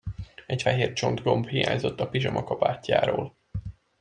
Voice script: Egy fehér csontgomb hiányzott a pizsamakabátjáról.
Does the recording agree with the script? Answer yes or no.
yes